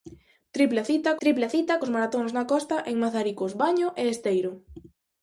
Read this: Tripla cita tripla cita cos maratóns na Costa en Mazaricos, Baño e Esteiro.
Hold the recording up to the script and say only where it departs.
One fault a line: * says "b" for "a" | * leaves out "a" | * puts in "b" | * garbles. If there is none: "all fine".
all fine